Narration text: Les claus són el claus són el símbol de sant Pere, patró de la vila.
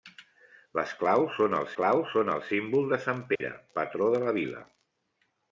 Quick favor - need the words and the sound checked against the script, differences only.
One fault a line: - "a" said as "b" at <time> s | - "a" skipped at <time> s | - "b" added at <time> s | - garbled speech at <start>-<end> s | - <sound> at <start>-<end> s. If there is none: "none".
- dropout at 3.4-3.4 s